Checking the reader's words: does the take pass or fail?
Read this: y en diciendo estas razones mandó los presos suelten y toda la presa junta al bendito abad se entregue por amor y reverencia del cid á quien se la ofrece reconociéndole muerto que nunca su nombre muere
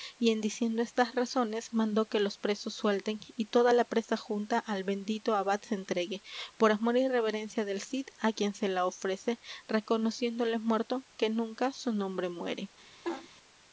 fail